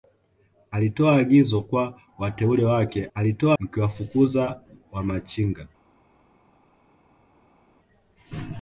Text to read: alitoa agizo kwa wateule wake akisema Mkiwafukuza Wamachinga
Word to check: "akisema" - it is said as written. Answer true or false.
false